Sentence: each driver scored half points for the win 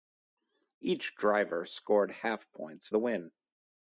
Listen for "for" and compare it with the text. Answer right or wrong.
wrong